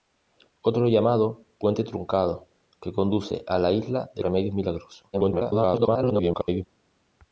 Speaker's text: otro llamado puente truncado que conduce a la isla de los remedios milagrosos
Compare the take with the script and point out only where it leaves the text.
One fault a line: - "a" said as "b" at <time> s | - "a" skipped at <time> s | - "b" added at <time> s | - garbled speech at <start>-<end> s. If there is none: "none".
- "los" skipped at 4.2 s
- garbled speech at 5.1-6.7 s